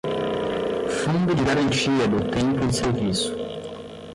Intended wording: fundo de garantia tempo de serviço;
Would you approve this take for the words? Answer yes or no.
no